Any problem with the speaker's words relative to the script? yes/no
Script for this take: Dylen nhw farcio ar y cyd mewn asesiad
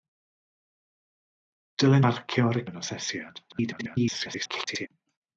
yes